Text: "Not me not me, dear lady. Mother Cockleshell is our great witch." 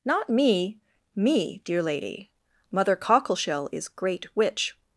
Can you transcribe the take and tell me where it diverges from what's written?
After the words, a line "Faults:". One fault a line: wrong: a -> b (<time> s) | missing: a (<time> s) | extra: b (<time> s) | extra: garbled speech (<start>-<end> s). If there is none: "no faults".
"Not me me, dear lady. Mother Cockleshell is great witch."
Faults:
missing: not (0.8 s)
missing: our (3.9 s)